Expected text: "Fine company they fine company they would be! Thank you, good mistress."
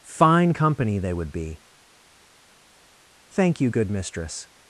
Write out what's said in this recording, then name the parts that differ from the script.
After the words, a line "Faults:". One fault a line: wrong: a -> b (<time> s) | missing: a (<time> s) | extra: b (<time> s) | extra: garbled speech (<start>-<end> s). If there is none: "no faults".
"Fine company they would be! Thank you, good mistress."
Faults:
missing: fine company they (1.1 s)